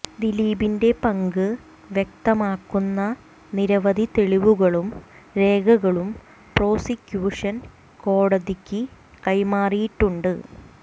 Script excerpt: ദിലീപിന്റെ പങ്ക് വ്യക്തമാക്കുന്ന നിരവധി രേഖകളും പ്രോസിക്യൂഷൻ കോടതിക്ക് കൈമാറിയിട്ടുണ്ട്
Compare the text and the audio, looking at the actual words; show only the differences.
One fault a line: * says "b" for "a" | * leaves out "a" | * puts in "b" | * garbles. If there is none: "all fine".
* puts in "തെളിവുകളും"